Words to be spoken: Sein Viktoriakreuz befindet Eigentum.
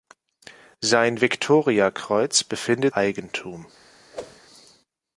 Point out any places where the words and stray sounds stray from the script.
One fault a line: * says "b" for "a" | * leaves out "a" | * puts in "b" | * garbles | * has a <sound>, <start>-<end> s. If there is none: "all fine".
* has a whoosh, 4.1-4.4 s